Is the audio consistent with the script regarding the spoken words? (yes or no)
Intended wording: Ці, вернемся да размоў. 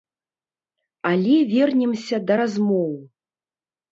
no